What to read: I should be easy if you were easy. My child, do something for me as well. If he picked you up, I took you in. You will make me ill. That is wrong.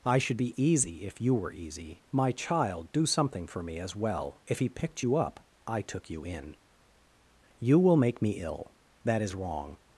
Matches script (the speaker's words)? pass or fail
pass